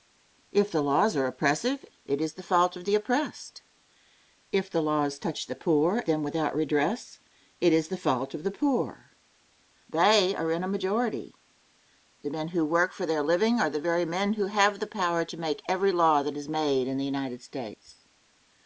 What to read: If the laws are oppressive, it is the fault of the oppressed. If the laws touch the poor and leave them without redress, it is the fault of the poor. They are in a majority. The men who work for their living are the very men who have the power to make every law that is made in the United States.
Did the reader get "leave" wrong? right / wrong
wrong